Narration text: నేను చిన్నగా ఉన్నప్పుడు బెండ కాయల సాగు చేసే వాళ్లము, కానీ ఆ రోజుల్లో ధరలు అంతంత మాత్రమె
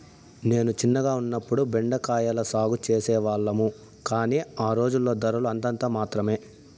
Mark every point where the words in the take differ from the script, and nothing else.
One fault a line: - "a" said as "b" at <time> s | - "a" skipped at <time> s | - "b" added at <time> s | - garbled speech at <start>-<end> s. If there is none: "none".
none